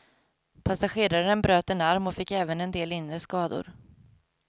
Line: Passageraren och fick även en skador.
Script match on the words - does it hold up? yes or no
no